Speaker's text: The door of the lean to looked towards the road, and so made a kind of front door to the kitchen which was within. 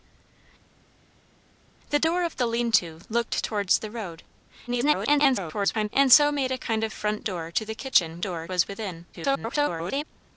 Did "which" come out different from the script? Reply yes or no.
yes